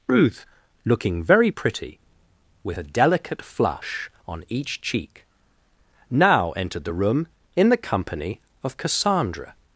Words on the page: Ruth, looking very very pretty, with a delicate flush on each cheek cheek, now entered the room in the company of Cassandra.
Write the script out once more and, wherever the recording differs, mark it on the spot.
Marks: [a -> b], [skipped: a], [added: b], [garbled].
Ruth, looking very [skipped: very] pretty, with a delicate flush on each cheek [skipped: cheek,] now entered the room in the company of Cassandra.